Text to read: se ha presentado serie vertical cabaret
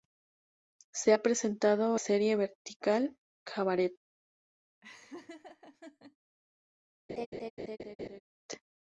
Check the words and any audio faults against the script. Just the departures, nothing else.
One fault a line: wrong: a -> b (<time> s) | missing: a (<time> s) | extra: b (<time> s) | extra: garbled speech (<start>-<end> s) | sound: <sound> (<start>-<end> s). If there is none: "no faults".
sound: laugh (4.8-6.2 s)
sound: laugh (7.1-8.2 s)